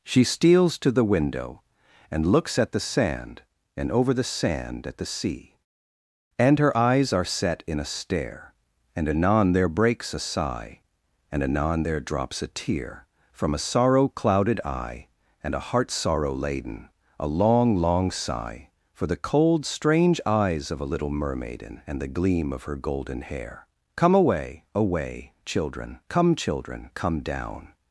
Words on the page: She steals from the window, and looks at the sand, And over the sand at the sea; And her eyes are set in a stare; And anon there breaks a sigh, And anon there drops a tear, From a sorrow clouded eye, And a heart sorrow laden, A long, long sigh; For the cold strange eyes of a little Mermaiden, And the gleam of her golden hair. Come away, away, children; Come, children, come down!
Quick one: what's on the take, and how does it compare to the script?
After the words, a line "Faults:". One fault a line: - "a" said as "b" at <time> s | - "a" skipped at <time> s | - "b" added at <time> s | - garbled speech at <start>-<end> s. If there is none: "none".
She steals to the window, and looks at the sand, And over the sand at the sea; And her eyes are set in a stare; And anon there breaks a sigh, And anon there drops a tear, From a sorrow clouded eye, And a heart sorrow laden, A long, long sigh; For the cold strange eyes of a little Mermaiden, And the gleam of her golden hair. Come away, away, children; Come, children, come down!
Faults:
- "from" said as "to" at 0.8 s